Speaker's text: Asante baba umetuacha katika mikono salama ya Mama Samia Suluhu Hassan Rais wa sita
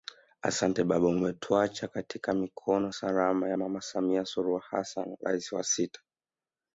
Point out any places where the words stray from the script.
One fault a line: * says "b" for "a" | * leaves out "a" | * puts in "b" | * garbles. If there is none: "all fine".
all fine